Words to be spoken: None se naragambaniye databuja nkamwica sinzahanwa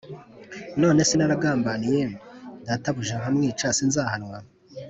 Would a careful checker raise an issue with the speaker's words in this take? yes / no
no